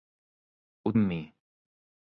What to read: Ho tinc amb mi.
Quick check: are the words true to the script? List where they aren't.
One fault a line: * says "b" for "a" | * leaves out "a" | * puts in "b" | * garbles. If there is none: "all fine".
* leaves out "tinc"